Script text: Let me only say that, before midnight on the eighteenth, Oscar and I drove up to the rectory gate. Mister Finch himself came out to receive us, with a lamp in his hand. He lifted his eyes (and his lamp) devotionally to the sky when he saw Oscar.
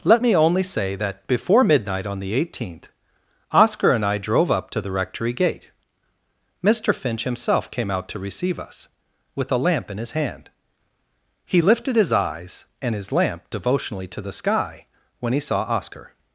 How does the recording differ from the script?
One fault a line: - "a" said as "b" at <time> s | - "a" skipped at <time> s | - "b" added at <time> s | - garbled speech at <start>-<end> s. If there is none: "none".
none